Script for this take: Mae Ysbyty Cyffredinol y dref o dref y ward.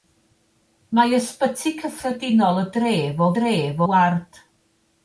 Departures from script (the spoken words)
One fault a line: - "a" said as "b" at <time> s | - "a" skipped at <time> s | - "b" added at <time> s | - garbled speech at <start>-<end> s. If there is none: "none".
none